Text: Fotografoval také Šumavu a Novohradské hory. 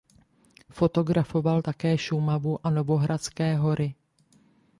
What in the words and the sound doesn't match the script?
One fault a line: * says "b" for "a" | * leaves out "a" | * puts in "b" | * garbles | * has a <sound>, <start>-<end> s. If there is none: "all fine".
all fine